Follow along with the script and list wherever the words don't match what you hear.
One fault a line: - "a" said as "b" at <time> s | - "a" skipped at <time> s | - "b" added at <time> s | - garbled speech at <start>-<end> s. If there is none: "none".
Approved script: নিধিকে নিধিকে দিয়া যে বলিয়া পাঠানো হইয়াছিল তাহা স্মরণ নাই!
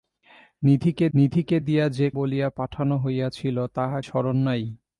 none